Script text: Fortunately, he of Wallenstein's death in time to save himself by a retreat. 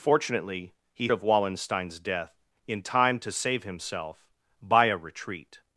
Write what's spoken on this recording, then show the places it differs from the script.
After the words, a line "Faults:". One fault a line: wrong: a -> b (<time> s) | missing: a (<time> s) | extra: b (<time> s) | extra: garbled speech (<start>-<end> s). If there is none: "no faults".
Fortunately, he of Wallenstein's death in time to save himself by a retreat.
Faults:
no faults